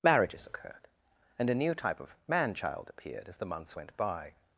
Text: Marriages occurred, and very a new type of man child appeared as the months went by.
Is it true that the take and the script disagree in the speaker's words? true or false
true